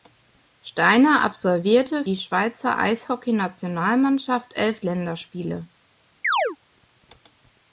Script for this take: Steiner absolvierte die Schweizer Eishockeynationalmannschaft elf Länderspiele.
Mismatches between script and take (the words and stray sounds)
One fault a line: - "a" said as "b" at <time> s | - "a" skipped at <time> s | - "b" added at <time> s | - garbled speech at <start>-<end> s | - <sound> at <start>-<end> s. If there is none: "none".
- chirp at 6.2-6.6 s